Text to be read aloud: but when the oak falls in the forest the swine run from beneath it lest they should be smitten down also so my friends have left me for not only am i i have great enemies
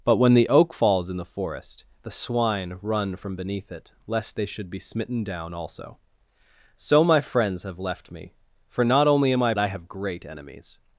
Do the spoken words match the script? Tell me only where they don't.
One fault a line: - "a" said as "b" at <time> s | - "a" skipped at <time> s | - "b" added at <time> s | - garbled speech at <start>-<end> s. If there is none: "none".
none